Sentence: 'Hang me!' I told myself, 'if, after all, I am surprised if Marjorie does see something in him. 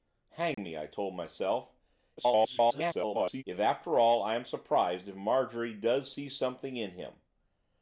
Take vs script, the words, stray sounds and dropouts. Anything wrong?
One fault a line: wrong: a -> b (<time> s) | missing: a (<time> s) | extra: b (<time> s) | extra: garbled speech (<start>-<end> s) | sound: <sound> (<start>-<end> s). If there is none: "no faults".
sound: dropout (0.5-0.6 s)
extra: garbled speech (2.2-3.4 s)